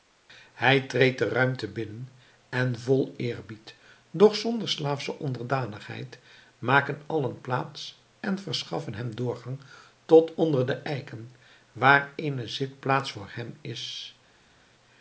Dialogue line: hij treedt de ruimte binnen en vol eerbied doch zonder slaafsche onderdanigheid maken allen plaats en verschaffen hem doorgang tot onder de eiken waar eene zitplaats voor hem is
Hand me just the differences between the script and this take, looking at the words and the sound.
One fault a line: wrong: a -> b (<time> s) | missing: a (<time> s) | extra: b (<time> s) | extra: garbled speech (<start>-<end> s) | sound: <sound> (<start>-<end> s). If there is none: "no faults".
no faults